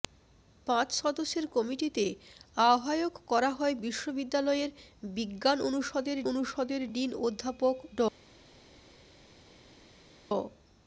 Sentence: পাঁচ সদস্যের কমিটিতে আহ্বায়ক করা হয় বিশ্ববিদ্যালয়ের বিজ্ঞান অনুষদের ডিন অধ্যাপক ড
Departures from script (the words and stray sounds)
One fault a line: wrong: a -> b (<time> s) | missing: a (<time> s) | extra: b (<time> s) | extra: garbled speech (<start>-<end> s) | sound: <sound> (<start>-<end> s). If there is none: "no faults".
extra: অনুষদের (6.3 s)